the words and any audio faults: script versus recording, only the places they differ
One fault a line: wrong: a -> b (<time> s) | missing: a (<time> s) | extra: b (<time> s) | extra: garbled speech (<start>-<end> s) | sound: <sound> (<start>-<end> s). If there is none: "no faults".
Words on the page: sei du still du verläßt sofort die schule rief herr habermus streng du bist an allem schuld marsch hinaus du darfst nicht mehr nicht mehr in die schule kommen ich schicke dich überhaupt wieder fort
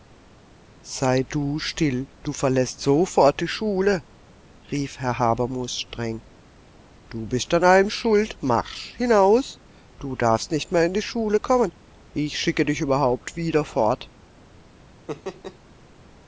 missing: nicht mehr (10.8 s)
sound: laugh (15.1-15.6 s)